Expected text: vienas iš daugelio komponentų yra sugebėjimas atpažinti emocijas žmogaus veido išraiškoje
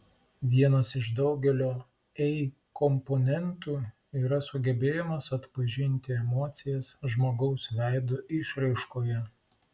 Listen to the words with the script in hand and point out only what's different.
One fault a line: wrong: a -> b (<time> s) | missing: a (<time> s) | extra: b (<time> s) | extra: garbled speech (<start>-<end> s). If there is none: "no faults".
extra: ei (2.3 s)